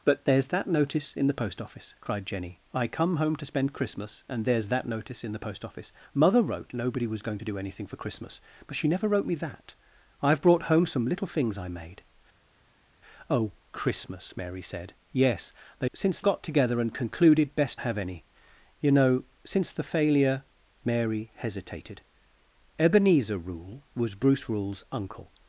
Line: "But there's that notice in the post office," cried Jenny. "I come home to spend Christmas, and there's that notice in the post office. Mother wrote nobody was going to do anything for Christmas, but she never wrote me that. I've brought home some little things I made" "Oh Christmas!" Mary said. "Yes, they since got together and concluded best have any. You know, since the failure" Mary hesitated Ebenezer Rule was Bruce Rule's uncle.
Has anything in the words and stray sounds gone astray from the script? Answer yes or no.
no